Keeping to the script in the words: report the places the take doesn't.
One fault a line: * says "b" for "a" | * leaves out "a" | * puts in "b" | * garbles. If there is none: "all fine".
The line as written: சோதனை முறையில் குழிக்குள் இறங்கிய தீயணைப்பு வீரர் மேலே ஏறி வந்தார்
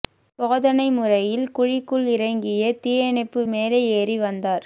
* leaves out "வீரர்"